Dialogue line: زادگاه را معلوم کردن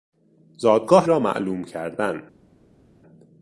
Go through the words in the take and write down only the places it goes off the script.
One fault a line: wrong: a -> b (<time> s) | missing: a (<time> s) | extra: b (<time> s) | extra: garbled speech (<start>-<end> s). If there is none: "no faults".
no faults